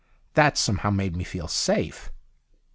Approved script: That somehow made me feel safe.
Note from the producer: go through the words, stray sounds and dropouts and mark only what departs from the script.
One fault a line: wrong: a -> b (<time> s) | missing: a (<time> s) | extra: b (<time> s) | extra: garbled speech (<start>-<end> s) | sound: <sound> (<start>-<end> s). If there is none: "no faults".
no faults